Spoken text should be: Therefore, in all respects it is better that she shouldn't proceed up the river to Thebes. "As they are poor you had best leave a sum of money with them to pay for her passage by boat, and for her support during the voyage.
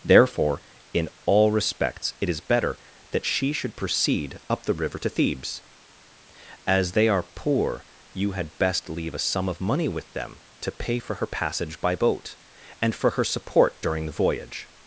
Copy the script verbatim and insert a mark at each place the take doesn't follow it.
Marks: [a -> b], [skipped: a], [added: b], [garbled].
Therefore, in all respects it is better that she [shouldn't -> should] proceed up the river to Thebes. "As they are poor you had best leave a sum of money with them to pay for her passage by boat, and for her support during the voyage.